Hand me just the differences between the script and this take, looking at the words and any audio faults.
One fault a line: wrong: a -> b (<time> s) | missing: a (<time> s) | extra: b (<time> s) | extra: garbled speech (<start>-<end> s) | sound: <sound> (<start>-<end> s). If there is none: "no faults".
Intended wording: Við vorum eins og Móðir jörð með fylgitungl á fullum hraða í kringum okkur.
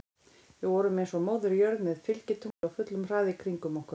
sound: dropout (2.5-2.6 s)